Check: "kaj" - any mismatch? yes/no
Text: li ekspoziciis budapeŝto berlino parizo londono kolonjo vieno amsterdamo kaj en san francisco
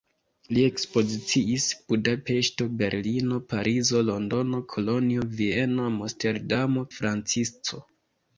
yes